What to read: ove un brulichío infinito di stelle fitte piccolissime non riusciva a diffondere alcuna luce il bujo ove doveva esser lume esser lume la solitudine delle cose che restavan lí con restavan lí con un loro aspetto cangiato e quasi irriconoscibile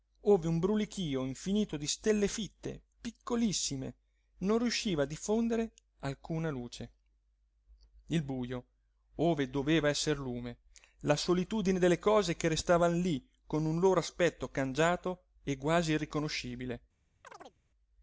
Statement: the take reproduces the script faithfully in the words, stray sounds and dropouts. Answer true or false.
false